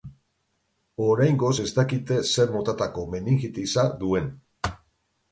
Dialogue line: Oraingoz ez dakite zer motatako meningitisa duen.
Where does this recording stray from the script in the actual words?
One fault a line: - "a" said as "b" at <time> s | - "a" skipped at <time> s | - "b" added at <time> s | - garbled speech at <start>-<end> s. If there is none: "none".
none